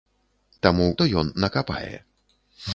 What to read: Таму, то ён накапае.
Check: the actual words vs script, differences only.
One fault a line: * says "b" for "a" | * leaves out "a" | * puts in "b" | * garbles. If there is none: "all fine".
all fine